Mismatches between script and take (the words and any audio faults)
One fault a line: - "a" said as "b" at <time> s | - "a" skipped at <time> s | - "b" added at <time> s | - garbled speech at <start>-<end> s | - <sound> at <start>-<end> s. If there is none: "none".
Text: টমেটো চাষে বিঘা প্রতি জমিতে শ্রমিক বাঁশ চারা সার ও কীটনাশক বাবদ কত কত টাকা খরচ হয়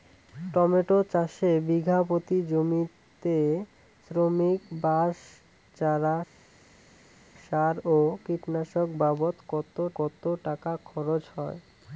none